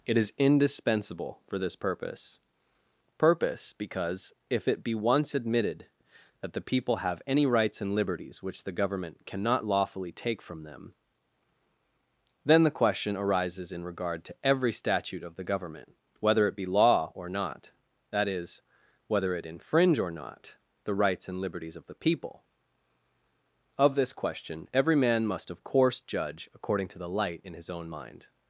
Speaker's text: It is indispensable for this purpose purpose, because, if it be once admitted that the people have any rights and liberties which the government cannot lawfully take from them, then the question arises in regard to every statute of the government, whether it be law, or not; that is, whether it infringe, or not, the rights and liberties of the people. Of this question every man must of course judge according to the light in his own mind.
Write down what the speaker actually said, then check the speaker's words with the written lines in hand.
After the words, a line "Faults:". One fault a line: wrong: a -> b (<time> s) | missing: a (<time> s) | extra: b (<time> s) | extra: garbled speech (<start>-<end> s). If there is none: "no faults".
It is indispensable for this purpose purpose, because, if it be once admitted that the people have any rights and liberties which the government cannot lawfully take from them, then the question arises in regard to every statute of the government, whether it be law, or not; that is, whether it infringe, or not, the rights and liberties of the people. Of this question every man must of course judge according to the light in his own mind.
Faults:
no faults